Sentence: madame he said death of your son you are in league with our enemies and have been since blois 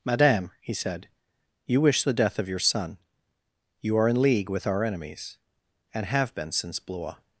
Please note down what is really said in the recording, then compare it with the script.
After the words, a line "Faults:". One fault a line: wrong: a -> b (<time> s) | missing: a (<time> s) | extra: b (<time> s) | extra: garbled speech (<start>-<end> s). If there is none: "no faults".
madame he said you wish the death of your son you are in league with our enemies and have been since blois
Faults:
extra: you wish the (1.6 s)